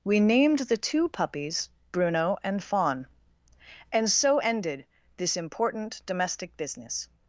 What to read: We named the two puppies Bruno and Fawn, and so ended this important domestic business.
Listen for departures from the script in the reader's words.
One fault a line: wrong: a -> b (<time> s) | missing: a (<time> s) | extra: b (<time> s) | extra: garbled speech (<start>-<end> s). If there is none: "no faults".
no faults